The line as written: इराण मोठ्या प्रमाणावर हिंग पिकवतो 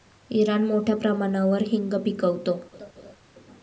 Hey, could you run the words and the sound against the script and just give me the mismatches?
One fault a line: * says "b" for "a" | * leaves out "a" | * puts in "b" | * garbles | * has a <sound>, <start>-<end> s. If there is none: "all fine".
* has a laugh, 2.7-3.2 s